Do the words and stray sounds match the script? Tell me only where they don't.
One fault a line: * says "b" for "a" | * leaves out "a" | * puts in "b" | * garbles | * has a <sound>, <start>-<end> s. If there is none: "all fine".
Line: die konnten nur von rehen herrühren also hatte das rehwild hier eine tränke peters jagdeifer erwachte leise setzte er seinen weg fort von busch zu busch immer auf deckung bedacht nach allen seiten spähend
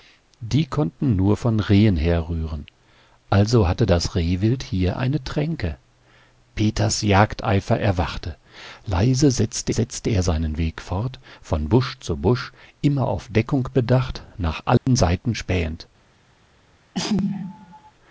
* puts in "setzte"
* has a dropout, 14.8-14.9 s
* has a sneeze, 16.9-17.9 s